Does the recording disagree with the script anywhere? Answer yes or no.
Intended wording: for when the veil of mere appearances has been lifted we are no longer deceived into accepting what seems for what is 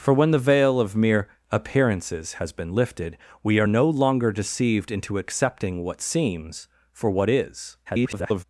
yes